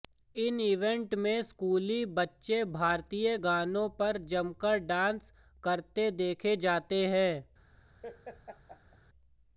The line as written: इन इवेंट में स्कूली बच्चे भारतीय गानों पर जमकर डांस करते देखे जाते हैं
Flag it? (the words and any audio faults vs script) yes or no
yes